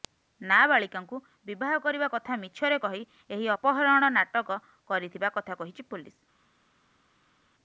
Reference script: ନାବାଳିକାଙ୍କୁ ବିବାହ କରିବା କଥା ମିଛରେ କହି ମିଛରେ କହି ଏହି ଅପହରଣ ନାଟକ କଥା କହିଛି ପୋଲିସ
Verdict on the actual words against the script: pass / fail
fail